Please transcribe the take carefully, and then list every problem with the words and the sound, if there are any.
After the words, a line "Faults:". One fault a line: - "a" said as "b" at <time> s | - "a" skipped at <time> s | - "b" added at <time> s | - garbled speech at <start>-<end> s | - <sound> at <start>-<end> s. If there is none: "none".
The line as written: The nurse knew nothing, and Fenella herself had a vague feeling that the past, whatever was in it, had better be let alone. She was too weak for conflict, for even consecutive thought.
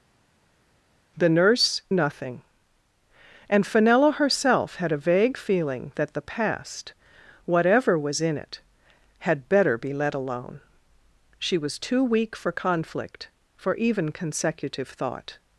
The nurse nothing, and Fenella herself had a vague feeling that the past, whatever was in it, had better be let alone. She was too weak for conflict, for even consecutive thought.
Faults:
- "knew" skipped at 1.8 s